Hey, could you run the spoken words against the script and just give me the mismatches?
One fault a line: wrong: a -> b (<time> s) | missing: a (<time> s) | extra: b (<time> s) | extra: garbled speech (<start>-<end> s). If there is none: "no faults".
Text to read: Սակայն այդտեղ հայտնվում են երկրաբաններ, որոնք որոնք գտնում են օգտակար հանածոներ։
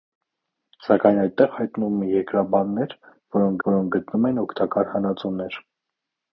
no faults